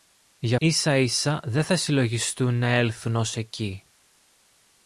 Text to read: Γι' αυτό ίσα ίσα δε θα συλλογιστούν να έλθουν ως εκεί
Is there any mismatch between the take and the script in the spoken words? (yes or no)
yes